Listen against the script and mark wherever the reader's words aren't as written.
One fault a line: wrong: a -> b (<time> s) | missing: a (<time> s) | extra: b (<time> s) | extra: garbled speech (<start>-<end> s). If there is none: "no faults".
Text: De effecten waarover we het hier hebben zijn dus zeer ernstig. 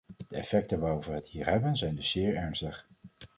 no faults